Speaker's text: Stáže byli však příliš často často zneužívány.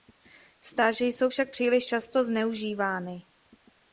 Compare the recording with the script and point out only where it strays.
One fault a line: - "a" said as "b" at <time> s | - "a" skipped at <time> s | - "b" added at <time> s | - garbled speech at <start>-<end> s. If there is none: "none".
- "byli" said as "jsou" at 1.1 s
- "často" skipped at 2.2 s